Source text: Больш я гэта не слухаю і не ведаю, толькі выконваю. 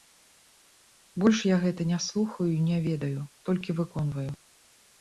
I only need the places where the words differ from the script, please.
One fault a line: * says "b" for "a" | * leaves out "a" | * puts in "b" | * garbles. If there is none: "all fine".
all fine